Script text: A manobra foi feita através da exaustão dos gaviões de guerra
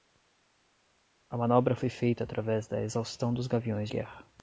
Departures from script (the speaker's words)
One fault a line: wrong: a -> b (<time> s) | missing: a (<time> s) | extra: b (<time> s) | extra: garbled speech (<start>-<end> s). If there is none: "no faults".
missing: de (3.9 s)